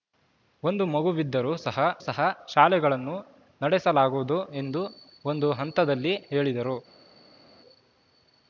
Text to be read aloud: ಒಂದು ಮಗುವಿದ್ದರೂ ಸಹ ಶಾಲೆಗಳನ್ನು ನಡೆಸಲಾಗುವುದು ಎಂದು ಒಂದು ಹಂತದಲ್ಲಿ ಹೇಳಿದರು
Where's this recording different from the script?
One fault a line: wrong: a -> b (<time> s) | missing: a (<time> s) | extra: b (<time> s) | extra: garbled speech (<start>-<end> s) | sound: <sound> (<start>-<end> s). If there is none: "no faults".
extra: ಸಹ (2.0 s)